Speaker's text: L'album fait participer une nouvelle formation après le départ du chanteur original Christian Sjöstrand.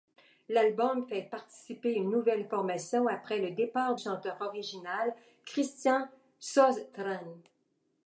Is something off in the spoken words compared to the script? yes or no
yes